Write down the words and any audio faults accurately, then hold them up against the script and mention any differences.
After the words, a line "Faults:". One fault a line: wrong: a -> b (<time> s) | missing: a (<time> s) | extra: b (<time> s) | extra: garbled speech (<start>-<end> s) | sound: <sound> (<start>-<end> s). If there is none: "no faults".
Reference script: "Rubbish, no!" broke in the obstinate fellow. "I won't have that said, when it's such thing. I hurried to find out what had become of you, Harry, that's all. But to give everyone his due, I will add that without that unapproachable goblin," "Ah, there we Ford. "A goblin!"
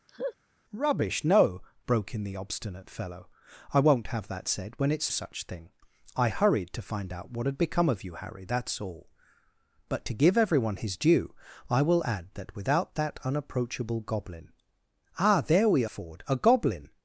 "Rubbish, no!" broke in the obstinate fellow. "I won't have that said, when it's such thing. I hurried to find out what had become of you, Harry, that's all. But to give everyone his due, I will add that without that unapproachable goblin," "Ah, there we Ford. "A goblin!"
Faults:
sound: laugh (0.1-0.3 s)